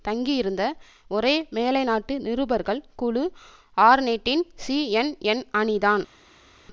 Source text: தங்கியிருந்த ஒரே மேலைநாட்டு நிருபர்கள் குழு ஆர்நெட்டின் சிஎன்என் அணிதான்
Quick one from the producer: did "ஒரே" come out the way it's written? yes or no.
yes